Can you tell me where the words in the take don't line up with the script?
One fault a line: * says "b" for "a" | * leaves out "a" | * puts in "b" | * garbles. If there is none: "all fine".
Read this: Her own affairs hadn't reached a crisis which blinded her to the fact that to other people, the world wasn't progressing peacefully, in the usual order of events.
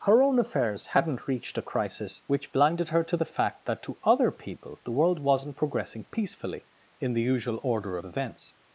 all fine